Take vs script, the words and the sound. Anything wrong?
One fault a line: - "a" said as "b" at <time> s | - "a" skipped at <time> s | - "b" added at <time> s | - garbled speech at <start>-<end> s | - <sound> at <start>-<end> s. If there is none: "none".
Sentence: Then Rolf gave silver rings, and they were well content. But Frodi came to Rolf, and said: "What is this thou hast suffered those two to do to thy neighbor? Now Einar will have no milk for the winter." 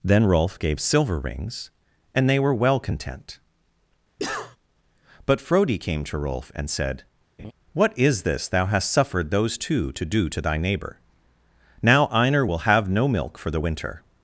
- cough at 4.2-4.6 s
- laugh at 7.4-7.5 s